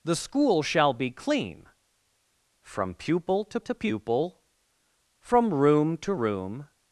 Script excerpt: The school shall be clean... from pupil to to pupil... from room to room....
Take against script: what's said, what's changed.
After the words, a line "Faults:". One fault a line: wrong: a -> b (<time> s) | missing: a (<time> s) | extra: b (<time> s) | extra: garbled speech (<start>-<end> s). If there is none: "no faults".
The school shall be clean... from pupil to to pupil... from room to room....
Faults:
no faults